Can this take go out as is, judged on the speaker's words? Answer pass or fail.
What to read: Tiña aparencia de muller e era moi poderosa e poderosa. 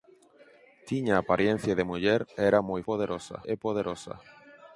pass